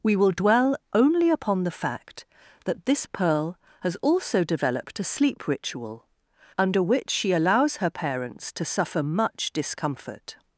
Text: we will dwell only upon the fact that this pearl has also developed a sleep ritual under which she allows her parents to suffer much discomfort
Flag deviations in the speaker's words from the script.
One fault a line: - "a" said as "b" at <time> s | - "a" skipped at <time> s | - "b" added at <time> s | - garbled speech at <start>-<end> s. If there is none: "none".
none